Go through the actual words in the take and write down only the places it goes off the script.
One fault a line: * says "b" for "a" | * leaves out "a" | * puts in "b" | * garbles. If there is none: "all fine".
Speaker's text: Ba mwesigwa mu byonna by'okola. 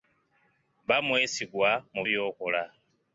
* leaves out "byonna"